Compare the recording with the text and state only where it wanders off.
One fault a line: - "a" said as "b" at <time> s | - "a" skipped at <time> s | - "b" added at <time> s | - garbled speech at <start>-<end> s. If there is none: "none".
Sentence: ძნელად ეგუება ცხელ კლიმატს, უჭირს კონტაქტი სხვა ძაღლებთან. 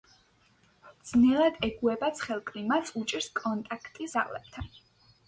- "სხვა" skipped at 4.1 s